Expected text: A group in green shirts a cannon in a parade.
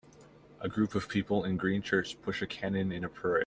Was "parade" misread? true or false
false